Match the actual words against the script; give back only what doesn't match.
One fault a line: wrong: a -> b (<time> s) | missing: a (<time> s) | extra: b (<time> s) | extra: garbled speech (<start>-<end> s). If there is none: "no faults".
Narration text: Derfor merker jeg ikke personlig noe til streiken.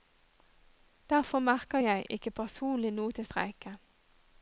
no faults